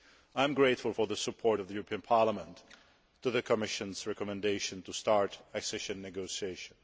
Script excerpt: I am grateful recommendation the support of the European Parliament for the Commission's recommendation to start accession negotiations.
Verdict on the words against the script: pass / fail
fail